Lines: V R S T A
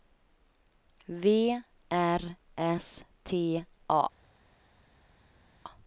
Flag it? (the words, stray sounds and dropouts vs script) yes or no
no